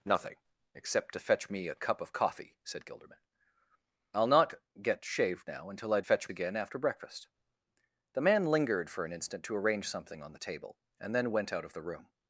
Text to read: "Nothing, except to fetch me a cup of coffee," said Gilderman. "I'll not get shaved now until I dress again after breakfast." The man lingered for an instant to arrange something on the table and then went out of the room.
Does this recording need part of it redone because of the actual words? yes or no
yes